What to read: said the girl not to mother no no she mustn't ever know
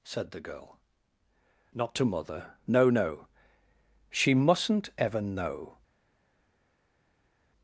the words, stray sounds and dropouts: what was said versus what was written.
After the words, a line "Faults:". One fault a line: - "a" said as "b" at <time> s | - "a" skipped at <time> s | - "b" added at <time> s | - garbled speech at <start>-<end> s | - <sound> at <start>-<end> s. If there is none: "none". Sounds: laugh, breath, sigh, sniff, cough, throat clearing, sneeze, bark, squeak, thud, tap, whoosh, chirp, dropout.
said the girl not to mother no no she mustn't ever know
Faults:
none